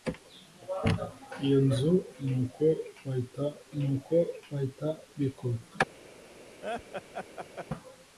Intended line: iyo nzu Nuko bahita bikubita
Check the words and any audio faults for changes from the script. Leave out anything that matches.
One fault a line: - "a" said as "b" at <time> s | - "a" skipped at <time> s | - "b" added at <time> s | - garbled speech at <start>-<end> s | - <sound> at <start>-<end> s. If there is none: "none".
- "Nuko bahita" added at 3.8 s
- laugh at 6.6-7.7 s